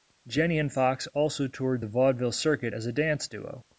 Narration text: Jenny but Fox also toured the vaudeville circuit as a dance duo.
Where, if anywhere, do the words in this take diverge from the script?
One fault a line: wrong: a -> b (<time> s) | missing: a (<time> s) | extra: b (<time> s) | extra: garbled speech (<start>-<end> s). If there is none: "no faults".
wrong: but -> and (0.6 s)